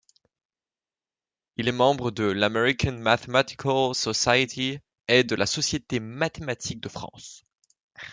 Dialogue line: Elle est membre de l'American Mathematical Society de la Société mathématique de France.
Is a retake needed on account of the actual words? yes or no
yes